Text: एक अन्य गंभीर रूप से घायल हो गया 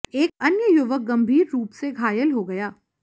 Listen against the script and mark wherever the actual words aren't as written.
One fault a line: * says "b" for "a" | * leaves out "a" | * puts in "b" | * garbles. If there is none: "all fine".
* puts in "युवक"